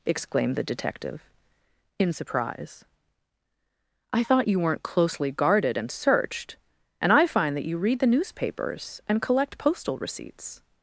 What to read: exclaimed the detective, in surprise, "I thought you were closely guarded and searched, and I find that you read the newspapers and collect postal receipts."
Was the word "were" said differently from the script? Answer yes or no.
yes